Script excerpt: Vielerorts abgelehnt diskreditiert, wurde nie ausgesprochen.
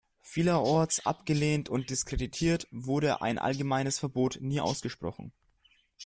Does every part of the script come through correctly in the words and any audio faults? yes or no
no